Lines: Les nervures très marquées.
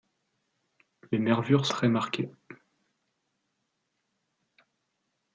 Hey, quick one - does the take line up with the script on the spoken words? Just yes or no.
yes